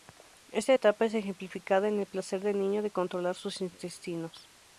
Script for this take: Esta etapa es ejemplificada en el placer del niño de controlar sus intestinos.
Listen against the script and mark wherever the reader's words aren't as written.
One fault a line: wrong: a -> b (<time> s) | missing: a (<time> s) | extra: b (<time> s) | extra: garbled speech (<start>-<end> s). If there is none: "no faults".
no faults